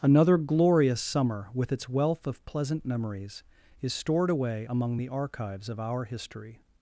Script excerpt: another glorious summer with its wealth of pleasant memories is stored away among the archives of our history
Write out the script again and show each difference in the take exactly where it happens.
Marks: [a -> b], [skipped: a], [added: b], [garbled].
another glorious summer with its wealth of pleasant memories is stored away among the archives of our history